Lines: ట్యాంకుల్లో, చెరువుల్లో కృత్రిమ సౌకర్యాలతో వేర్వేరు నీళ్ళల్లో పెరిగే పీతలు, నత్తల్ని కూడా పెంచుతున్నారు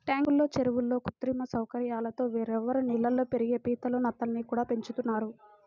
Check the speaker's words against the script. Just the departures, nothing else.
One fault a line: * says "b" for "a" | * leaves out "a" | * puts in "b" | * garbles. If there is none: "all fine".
all fine